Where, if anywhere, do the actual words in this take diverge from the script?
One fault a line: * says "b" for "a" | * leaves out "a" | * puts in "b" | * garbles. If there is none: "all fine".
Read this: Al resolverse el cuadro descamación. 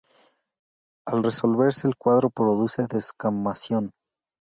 * puts in "produce"